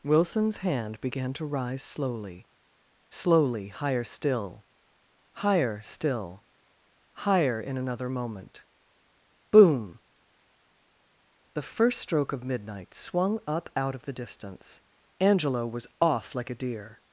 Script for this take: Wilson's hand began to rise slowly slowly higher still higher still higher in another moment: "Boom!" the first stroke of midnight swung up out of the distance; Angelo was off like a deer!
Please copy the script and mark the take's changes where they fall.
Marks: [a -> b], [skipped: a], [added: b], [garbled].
Wilson's hand began to rise slowly slowly higher still higher still higher in another moment: "Boom!" the first stroke of midnight swung up out of the distance; Angelo was off like a deer!